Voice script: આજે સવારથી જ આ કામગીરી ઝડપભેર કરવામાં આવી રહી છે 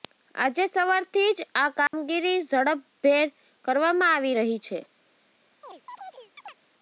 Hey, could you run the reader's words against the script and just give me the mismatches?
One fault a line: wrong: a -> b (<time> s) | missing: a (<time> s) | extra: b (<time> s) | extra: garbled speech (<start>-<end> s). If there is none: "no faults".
no faults